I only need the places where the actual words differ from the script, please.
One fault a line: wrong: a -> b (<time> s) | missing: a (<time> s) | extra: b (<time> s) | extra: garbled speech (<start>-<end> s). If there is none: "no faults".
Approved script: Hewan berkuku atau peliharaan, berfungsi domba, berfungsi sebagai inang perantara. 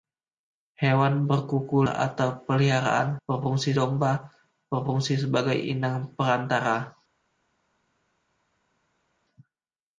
no faults